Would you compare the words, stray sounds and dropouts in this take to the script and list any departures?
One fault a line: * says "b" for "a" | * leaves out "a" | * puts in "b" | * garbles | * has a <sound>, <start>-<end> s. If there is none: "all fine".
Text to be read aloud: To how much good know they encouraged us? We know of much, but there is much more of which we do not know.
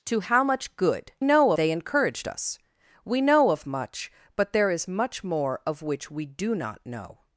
all fine